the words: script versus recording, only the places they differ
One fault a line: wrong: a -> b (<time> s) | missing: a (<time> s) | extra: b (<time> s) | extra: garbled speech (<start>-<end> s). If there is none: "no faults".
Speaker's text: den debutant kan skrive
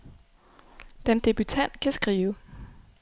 no faults